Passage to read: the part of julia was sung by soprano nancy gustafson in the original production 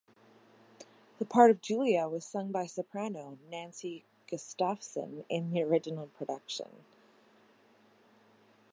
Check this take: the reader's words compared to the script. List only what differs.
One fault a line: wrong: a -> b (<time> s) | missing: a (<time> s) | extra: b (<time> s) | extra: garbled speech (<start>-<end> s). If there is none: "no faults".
no faults